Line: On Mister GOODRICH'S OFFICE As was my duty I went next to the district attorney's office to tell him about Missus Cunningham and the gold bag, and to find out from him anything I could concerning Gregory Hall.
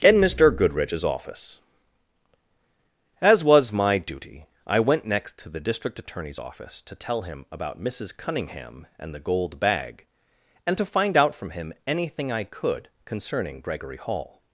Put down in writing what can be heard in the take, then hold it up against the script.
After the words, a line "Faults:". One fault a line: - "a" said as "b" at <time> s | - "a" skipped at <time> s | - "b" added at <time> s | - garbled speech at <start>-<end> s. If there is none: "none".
IN Mister GOODRICH'S OFFICE As was my duty I went next to the district attorney's office to tell him about Missus Cunningham and the gold bag, and to find out from him anything I could concerning Gregory Hall.
Faults:
- "On" said as "IN" at 0.0 s